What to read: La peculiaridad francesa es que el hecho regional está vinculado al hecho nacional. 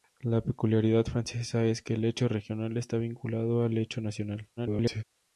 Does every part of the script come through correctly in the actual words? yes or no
no